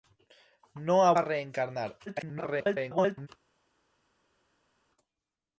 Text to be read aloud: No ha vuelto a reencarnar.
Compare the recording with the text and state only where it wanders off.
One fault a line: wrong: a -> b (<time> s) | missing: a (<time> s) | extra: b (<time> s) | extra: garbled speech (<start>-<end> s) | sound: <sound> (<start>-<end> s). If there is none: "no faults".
missing: vuelto (1.1 s)
extra: garbled speech (2.1-3.3 s)